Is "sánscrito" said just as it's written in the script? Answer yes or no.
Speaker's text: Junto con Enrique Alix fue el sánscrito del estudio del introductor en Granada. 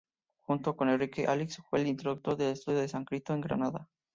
no